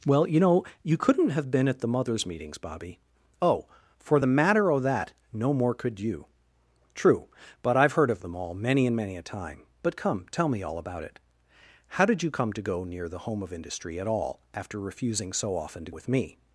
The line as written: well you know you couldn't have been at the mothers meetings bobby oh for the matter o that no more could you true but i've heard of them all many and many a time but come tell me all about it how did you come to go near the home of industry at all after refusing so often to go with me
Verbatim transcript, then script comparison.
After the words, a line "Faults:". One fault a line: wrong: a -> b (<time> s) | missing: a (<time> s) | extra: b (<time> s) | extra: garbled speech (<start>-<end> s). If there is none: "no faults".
well you know you couldn't have been at the mothers meetings bobby oh for the matter o that no more could you true but i've heard of them all many and many a time but come tell me all about it how did you come to go near the home of industry at all after refusing so often to with me
Faults:
missing: go (15.9 s)